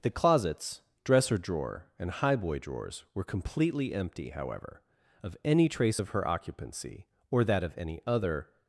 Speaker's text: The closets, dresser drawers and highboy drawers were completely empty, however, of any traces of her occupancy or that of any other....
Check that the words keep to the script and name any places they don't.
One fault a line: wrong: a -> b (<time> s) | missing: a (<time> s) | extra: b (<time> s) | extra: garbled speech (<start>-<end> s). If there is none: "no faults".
wrong: drawers -> drawer (1.4 s)
wrong: traces -> trace (5.7 s)